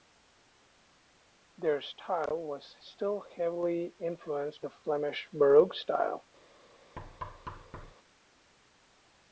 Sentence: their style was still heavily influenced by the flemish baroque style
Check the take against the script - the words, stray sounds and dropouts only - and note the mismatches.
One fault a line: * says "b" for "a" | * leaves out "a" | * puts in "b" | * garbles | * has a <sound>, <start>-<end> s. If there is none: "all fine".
* leaves out "by"
* has a thud, 7.0-7.9 s